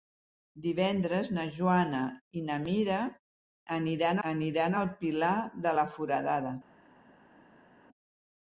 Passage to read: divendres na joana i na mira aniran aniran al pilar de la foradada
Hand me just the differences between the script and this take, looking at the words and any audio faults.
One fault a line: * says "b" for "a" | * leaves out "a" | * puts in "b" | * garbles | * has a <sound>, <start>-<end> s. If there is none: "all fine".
all fine